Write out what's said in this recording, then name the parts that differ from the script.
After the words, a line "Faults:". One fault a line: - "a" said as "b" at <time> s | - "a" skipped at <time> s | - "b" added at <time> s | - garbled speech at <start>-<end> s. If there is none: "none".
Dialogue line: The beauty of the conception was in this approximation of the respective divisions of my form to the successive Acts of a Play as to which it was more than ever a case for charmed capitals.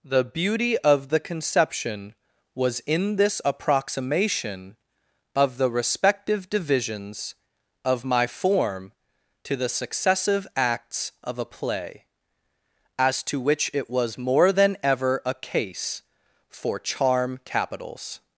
The beauty of the conception was in this approximation of the respective divisions of my form to the successive Acts of a Play as to which it was more than ever a case for charm capitals.
Faults:
- "charmed" said as "charm" at 16.8 s